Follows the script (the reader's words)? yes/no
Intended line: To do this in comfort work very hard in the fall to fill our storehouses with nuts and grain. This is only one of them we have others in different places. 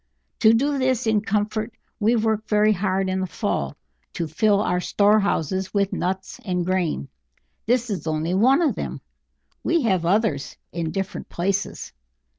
no